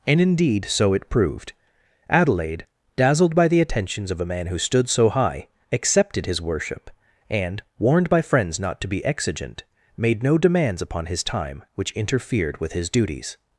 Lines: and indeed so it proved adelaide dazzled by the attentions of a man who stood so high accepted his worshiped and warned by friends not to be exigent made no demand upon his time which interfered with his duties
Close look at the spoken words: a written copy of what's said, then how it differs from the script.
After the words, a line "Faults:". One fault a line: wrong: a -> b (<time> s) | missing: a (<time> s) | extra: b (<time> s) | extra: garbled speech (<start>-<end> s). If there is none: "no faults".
and indeed so it proved adelaide dazzled by the attentions of a man who stood so high accepted his worship and warned by friends not to be exigent made no demands upon his time which interfered with his duties
Faults:
wrong: worshiped -> worship (6.4 s)
wrong: demand -> demands (10.4 s)